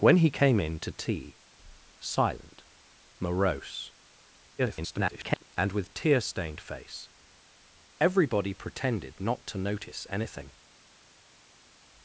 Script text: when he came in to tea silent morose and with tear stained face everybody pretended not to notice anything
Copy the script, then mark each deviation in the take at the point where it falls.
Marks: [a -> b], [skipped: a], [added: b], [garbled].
when he came in to tea silent morose [garbled] and with tear stained face everybody pretended not to notice anything